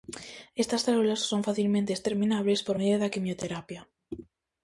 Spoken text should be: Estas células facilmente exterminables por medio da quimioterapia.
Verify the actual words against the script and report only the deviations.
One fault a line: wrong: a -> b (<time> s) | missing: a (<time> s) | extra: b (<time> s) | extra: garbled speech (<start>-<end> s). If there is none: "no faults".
extra: son (1.3 s)